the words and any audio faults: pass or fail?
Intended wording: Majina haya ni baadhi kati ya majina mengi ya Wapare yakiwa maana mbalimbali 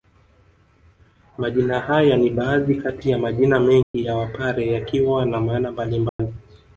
fail